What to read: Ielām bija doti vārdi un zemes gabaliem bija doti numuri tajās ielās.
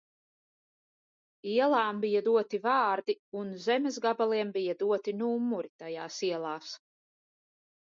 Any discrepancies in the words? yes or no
no